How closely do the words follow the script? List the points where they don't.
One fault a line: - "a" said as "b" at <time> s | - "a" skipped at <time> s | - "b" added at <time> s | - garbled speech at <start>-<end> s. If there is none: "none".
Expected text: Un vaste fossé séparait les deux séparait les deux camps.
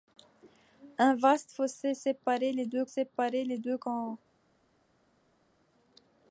none